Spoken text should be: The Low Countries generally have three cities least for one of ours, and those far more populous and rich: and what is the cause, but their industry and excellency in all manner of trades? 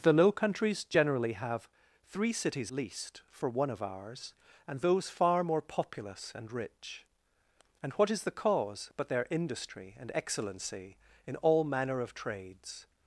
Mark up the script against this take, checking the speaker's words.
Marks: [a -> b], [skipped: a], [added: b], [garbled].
The Low Countries generally have three cities least for one of ours, and those far more populous and rich: and what is the cause, but their industry and excellency in all manner of trades?